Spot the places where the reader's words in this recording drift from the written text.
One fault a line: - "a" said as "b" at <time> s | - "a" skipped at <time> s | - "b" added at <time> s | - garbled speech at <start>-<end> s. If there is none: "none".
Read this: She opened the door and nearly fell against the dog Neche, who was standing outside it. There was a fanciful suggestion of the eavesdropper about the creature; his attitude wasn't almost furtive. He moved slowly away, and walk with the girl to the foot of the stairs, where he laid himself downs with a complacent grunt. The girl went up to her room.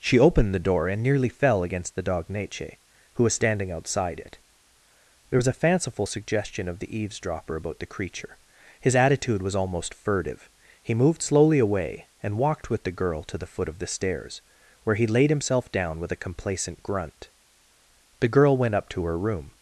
- "wasn't" said as "was" at 9.4 s
- "walk" said as "walked" at 12.4 s
- "downs" said as "down" at 15.7 s